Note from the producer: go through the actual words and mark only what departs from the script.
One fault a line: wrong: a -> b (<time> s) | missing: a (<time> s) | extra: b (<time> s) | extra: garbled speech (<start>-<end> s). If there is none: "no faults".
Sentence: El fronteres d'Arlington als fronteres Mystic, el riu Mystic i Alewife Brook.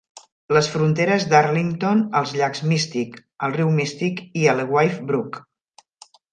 wrong: El -> Les (0.6 s)
wrong: fronteres -> llacs (2.4 s)